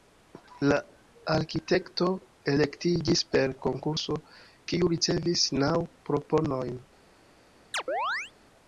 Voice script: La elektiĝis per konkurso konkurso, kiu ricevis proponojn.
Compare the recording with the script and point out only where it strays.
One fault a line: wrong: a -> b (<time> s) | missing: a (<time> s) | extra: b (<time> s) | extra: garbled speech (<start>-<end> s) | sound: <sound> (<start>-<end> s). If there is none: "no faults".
extra: arkitekto (1.3 s)
missing: konkurso (4.2 s)
extra: naŭ (5.6 s)
sound: chirp (7.7-8.3 s)